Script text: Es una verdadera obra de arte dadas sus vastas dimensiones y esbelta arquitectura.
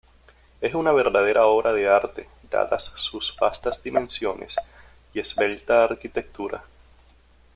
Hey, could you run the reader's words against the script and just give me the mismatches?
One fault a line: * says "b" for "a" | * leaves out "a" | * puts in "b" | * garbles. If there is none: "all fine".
all fine